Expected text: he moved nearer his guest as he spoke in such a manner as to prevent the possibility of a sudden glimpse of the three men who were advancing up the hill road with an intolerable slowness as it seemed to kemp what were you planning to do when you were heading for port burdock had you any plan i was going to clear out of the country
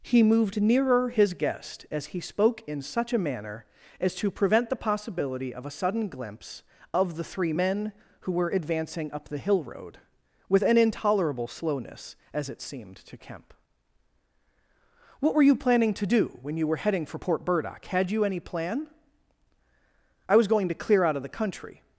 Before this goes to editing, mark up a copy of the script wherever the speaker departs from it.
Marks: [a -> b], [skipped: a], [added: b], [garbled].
he moved nearer his guest as he spoke in such a manner as to prevent the possibility of a sudden glimpse of the three men who were advancing up the hill road with an intolerable slowness as it seemed to kemp what were you planning to do when you were heading for port burdock had you any plan i was going to clear out of the country